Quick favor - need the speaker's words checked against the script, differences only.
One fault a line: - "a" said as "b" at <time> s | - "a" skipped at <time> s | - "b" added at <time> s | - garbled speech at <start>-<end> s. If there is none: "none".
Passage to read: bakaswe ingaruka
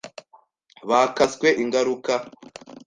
none